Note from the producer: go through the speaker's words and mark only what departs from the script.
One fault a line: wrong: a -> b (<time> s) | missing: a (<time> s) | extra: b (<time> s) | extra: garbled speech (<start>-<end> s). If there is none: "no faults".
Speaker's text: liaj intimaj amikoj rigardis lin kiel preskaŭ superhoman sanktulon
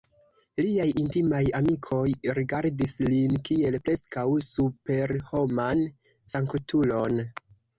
no faults